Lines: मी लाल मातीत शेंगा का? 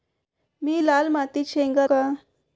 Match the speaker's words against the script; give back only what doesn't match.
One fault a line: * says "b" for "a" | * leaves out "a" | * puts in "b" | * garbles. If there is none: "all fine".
all fine